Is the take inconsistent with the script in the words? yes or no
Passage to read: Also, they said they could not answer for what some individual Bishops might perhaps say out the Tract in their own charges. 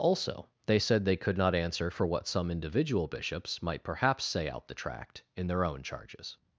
no